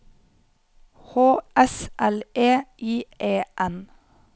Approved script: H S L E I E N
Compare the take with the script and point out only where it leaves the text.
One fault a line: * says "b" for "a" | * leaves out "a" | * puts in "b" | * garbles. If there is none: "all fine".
all fine